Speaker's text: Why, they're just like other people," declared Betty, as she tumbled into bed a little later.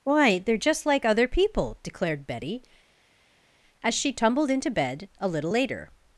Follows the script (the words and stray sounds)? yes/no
yes